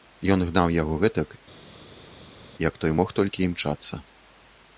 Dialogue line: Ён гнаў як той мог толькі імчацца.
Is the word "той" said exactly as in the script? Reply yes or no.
yes